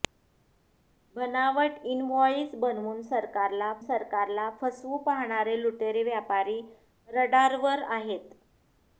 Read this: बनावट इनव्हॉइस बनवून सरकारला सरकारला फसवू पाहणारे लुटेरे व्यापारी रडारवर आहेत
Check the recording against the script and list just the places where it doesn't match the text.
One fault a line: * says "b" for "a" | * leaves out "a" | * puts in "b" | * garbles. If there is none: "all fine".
all fine